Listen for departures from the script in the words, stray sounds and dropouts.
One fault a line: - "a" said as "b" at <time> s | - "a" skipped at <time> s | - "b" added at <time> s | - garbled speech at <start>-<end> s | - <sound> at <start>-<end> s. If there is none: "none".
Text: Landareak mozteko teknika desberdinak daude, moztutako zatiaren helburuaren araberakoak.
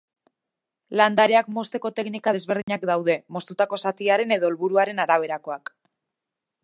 - dropout at 2.6-2.7 s
- "edo" added at 4.4 s